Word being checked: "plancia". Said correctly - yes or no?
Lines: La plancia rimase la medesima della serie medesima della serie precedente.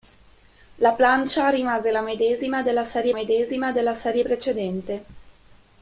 yes